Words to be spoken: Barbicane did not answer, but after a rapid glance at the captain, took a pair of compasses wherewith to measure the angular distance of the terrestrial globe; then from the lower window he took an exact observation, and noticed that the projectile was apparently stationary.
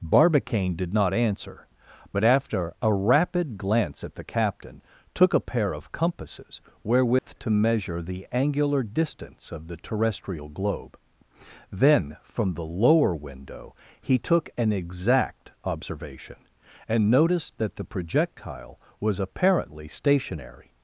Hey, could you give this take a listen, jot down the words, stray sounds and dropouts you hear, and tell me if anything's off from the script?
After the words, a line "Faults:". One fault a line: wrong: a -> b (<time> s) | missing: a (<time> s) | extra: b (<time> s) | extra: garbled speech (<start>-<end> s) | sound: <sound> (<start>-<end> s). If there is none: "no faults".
Barbicane did not answer, but after a rapid glance at the captain, took a pair of compasses wherewith to measure the angular distance of the terrestrial globe; then from the lower window he took an exact observation, and noticed that the projectile was apparently stationary.
Faults:
sound: dropout (7.2-7.3 s)